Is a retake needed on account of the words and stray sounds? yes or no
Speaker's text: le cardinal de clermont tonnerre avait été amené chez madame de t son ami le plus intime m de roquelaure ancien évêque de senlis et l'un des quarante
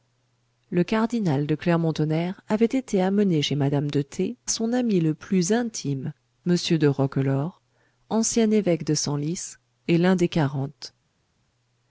no